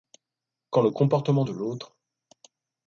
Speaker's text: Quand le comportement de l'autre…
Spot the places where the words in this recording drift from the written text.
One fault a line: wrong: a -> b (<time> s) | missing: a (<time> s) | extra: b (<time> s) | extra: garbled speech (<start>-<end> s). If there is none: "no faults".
no faults